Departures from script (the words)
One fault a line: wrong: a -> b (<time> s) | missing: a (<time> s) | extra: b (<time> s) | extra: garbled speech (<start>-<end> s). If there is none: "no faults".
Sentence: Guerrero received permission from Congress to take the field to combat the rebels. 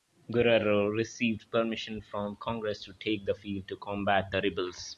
no faults